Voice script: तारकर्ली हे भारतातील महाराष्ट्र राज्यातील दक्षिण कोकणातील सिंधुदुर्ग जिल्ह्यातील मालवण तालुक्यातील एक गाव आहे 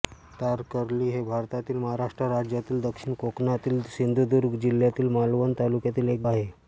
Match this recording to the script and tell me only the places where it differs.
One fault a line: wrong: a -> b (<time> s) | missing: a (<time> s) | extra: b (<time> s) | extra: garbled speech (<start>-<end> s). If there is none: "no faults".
missing: गाव (6.2 s)